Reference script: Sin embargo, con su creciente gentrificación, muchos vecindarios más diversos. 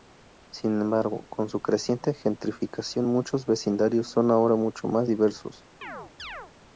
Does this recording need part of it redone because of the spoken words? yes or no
yes